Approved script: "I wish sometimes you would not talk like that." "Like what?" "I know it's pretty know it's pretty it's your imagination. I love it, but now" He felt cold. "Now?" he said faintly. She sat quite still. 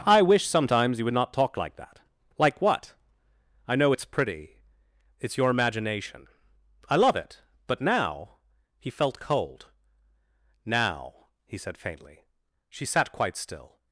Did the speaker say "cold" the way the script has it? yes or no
yes